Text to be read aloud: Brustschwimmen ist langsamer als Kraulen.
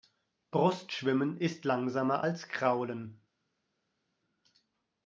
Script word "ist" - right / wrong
right